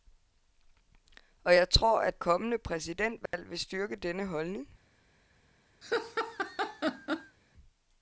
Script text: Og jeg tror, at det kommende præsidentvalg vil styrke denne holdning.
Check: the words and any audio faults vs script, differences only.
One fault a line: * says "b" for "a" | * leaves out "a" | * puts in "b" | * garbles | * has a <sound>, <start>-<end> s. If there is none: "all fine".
* leaves out "det"
* has a dropout, 3.3-3.3 s
* has a laugh, 5.8-7.4 s